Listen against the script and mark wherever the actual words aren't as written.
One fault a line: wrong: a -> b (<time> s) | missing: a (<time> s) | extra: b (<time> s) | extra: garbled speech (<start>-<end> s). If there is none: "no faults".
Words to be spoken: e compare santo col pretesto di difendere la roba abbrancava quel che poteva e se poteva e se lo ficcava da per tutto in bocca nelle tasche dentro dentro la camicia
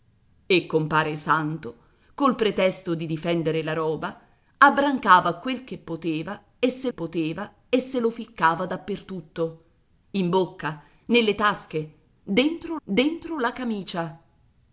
no faults